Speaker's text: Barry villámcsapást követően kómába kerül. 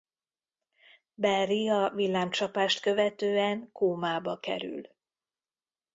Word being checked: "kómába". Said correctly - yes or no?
yes